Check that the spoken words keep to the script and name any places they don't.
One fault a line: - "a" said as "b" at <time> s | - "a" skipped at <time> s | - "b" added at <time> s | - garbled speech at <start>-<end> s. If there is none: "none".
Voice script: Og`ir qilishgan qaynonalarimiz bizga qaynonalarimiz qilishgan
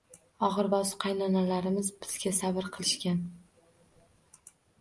- "qilishgan" said as "bosiq" at 0.7 s
- "qaynonalarimiz" said as "sabr" at 2.4 s